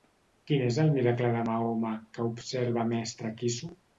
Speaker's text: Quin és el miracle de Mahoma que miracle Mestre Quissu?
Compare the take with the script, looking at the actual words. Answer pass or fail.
fail